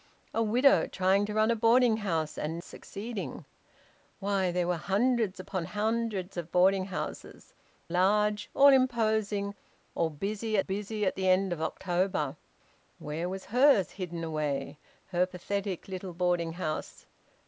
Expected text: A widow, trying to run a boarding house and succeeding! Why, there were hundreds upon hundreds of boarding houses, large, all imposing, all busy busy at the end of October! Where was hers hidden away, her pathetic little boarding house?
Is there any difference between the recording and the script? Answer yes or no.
no